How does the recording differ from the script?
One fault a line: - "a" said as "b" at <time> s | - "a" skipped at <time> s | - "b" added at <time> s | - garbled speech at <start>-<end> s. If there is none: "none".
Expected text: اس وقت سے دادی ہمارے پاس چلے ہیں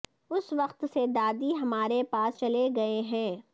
- "گئے" added at 2.8 s